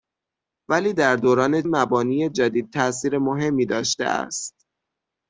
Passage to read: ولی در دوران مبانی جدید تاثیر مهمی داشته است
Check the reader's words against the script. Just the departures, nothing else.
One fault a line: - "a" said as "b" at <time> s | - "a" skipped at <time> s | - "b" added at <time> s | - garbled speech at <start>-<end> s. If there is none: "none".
none